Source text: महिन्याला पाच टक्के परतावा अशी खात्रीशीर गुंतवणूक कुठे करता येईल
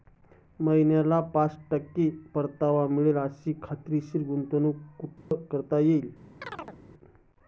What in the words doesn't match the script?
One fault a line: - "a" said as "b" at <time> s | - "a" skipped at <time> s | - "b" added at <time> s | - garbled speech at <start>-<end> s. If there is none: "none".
- "मिळेल" added at 2.9 s